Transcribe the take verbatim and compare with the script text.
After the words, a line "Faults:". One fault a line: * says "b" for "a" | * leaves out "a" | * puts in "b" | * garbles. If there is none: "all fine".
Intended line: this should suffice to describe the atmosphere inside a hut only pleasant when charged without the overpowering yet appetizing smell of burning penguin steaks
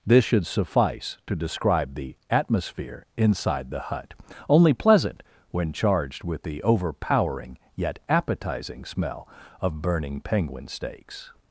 this should suffice to describe the atmosphere inside the hut only pleasant when charged with the overpowering yet appetizing smell of burning penguin steaks
Faults:
* says "the" for "a"
* says "with" for "without"